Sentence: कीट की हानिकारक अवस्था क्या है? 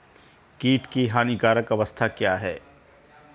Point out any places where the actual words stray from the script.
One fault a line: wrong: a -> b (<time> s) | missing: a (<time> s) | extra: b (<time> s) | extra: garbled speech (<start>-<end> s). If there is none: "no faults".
no faults